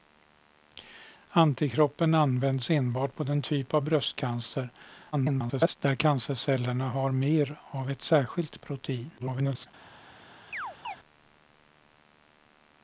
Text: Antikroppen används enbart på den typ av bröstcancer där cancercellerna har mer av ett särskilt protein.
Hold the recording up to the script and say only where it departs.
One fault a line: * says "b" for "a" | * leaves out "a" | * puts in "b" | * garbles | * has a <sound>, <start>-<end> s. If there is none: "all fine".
* garbles
* garbles
* has a chirp, 10.5-11.0 s